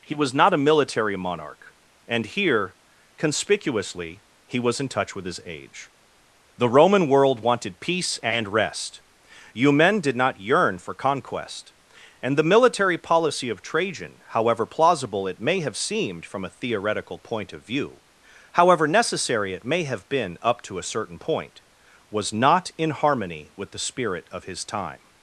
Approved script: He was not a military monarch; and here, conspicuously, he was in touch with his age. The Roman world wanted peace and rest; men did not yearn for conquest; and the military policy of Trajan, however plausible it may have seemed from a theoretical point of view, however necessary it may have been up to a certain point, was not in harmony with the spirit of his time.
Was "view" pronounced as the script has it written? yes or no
yes